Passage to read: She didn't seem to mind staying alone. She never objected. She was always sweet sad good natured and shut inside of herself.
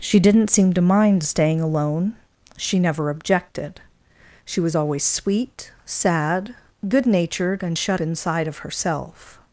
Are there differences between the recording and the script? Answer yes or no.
no